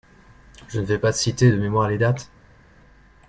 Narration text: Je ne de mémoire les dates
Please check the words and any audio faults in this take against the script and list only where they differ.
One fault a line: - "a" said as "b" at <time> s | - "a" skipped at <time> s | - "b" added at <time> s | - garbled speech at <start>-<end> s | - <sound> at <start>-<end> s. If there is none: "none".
- "vais pas citer" added at 0.8 s